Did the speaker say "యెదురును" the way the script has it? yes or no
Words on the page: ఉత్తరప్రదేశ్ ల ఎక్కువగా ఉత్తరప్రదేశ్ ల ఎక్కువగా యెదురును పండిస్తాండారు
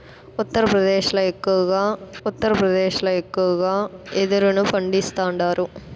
yes